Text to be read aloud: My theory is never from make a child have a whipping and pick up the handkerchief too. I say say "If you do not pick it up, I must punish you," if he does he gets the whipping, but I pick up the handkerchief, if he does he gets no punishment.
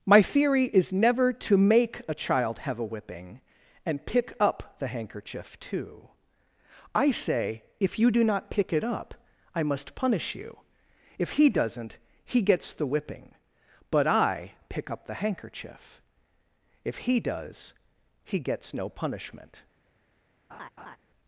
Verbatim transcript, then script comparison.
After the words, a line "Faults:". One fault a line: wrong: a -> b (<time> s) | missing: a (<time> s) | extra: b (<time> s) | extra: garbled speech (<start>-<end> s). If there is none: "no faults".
My theory is never to make a child have a whipping and pick up the handkerchief too. I say "If you do not pick it up, I must punish you," if he doesn't he gets the whipping, but I pick up the handkerchief, if he does he gets no punishment.
Faults:
wrong: from -> to (1.3 s)
missing: say (7.6 s)
wrong: does -> doesn't (11.5 s)